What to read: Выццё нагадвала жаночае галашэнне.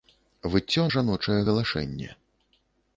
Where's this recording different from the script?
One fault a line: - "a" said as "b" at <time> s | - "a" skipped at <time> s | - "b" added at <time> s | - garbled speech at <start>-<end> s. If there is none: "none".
- "нагадвала" skipped at 0.8 s